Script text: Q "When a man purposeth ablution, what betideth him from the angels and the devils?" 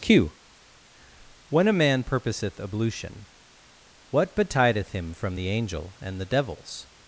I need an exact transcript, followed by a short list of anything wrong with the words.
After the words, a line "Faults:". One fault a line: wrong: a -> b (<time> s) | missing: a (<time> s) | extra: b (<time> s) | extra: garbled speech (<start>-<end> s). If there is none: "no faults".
Q "When a man purposeth ablution, what betideth him from the angel and the devils?"
Faults:
wrong: angels -> angel (5.5 s)